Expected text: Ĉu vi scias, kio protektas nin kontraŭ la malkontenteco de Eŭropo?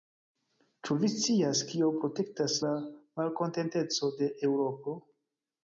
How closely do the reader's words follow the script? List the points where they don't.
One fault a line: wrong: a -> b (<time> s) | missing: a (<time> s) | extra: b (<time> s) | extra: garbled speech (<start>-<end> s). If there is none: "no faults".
missing: nin kontraŭ (2.6 s)